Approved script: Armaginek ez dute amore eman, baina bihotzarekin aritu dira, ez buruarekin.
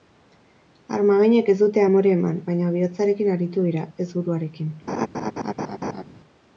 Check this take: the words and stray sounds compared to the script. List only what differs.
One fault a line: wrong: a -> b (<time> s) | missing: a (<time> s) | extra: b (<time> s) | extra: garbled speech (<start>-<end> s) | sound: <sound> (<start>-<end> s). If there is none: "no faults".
sound: laugh (4.9-6.0 s)